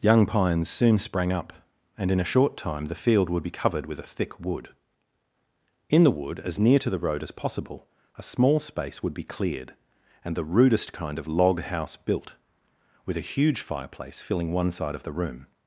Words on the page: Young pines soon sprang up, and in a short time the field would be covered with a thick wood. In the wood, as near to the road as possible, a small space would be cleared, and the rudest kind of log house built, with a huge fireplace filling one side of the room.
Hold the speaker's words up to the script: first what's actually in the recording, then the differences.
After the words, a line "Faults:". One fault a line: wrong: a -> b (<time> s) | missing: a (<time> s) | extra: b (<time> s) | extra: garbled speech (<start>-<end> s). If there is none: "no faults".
Young pines soon sprang up, and in a short time the field would be covered with a thick wood. In the wood, as near to the road as possible, a small space would be cleared, and the rudest kind of log house built, with a huge fireplace filling one side of the room.
Faults:
no faults